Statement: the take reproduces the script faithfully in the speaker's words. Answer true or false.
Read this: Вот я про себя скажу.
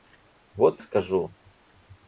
false